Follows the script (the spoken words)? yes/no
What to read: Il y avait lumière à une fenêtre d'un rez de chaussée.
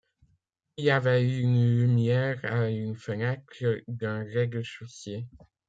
no